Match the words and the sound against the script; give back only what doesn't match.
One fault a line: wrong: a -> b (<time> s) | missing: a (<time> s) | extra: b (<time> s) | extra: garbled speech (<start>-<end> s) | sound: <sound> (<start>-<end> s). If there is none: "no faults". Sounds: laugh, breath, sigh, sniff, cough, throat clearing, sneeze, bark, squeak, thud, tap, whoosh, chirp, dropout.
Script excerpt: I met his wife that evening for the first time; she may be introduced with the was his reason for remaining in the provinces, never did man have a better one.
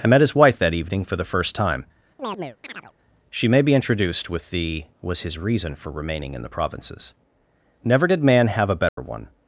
sound: chirp (2.2-2.9 s)
sound: dropout (8.9-9.0 s)